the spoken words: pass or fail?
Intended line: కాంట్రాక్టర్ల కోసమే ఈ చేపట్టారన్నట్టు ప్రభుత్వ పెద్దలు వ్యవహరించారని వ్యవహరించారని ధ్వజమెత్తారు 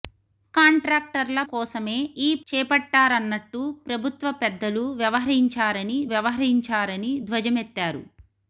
pass